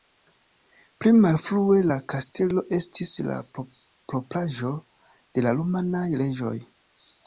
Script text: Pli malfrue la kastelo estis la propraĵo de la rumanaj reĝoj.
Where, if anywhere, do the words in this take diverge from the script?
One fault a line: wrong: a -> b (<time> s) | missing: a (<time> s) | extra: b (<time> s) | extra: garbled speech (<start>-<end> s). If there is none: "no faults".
no faults